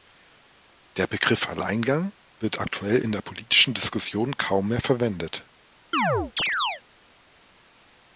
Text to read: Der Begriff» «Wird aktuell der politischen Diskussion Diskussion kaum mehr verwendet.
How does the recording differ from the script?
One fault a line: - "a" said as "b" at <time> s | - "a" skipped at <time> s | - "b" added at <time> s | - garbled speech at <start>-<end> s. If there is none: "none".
- "Alleingang" added at 1.5 s
- "in" added at 3.0 s
- "Diskussion" skipped at 4.3 s